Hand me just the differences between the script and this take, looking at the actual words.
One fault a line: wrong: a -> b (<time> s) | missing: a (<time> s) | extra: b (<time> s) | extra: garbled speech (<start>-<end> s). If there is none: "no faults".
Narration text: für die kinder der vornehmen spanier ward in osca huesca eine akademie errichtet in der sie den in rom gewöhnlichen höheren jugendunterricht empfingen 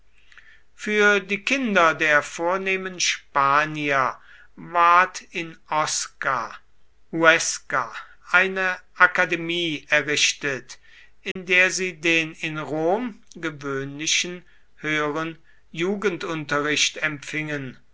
no faults